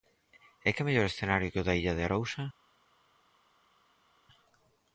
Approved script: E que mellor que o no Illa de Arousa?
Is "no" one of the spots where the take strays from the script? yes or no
yes